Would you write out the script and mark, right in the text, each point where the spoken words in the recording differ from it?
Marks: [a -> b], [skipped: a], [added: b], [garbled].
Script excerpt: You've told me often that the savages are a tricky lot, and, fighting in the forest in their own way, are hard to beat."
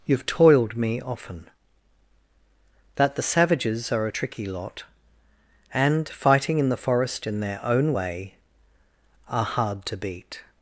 You've [told -> toiled] me often that the savages are a tricky lot, and, fighting in the forest in their own way, are hard to beat."